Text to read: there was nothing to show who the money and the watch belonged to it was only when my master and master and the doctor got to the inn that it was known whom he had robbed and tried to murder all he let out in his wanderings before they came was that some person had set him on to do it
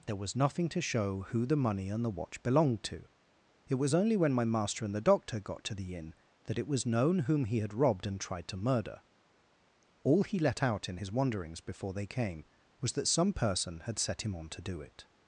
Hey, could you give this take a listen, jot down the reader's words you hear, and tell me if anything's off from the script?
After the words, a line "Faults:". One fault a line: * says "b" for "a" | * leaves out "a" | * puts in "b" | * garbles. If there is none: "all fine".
there was nothing to show who the money and the watch belonged to it was only when my master and the doctor got to the inn that it was known whom he had robbed and tried to murder all he let out in his wanderings before they came was that some person had set him on to do it
Faults:
* leaves out "master and"